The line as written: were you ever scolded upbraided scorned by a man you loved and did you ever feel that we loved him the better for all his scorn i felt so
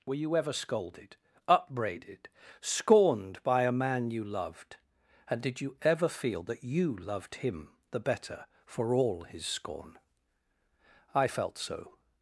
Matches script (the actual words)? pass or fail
fail